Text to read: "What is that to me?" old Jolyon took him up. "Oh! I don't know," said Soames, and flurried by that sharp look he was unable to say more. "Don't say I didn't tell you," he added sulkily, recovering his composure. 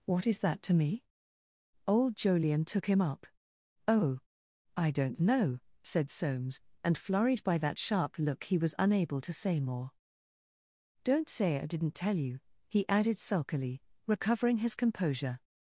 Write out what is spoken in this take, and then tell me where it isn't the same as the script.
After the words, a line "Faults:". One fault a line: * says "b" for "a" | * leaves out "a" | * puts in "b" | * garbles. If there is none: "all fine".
"What is that to me?" old Jolyon took him up. "Oh! I don't know," said Soames, and flurried by that sharp look he was unable to say more. "Don't say I didn't tell you," he added sulkily, recovering his composure.
Faults:
all fine